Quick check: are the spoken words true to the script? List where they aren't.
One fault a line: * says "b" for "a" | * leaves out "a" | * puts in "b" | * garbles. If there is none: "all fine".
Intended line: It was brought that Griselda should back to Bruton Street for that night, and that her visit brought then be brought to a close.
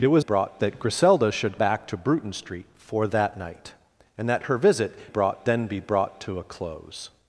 all fine